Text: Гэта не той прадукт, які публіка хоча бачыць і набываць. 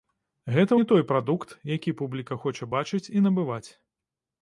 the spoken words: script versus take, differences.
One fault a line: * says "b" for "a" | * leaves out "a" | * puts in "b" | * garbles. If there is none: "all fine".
all fine